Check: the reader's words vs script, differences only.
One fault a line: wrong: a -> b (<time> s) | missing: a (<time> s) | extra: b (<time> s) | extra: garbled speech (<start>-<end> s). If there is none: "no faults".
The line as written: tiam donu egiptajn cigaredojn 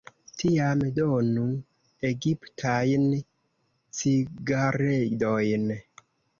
no faults